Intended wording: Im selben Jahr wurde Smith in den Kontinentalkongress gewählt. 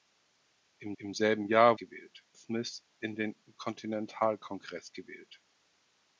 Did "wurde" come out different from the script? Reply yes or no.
yes